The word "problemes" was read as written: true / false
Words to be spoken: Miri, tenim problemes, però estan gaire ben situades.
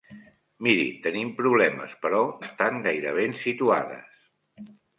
true